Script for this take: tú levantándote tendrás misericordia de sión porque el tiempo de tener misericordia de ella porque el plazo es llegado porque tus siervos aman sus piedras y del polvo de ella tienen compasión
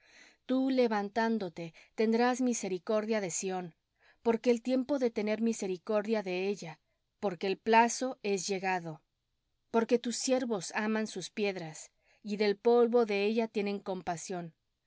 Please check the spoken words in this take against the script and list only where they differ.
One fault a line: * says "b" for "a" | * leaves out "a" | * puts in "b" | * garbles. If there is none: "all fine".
all fine